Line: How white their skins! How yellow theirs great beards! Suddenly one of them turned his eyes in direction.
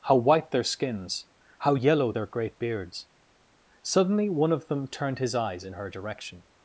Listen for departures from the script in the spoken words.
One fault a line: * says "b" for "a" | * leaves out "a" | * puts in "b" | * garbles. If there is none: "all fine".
* says "their" for "theirs"
* puts in "her"